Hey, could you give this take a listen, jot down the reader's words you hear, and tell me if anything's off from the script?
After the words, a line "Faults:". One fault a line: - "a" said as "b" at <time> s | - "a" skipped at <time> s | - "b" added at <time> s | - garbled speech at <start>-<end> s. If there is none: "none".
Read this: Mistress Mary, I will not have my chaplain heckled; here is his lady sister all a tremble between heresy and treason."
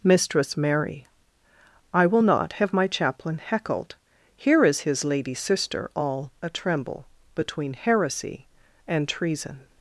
Mistress Mary, I will not have my chaplain heckled; here is his lady sister all a tremble between heresy and treason."
Faults:
none